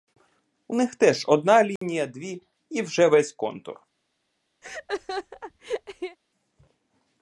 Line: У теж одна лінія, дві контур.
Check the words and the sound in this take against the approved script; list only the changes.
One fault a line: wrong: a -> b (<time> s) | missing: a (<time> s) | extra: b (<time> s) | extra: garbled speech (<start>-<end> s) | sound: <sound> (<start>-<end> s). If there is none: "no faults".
extra: них (0.7 s)
sound: dropout (1.8-1.8 s)
extra: і вже весь (2.7 s)
sound: laugh (4.6-6.2 s)